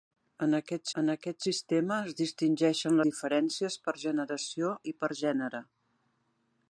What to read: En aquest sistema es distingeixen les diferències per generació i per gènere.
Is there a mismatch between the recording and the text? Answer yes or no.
yes